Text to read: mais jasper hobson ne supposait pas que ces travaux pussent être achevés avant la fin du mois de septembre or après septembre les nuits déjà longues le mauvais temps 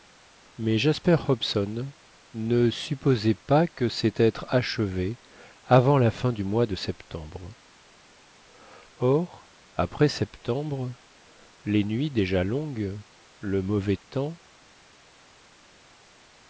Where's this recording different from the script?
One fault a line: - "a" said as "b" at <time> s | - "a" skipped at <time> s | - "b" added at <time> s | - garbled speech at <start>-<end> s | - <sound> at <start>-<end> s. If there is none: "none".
- "travaux pussent" skipped at 4.1 s